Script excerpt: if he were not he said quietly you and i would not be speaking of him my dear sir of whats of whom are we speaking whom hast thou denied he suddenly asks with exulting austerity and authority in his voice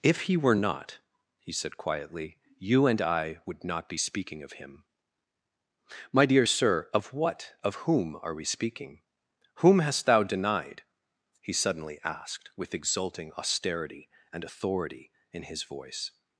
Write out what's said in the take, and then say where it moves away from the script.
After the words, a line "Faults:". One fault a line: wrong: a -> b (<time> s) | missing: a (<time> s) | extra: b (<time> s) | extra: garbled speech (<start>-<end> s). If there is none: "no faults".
if he were not he said quietly you and i would not be speaking of him my dear sir of what of whom are we speaking whom hast thou denied he suddenly asked with exulting austerity and authority in his voice
Faults:
wrong: whats -> what (7.1 s)
wrong: asks -> asked (12.0 s)